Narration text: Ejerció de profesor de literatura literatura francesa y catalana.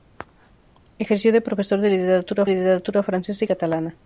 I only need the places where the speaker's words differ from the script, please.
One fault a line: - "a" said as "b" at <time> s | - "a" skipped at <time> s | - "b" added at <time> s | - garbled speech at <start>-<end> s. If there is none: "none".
none